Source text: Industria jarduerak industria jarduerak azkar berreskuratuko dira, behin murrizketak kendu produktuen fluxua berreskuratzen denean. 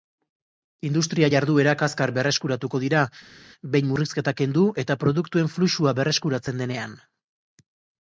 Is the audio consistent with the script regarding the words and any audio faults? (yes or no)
no